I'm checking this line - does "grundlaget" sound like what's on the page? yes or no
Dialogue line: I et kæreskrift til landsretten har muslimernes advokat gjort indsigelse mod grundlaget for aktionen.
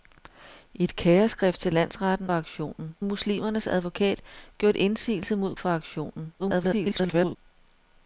no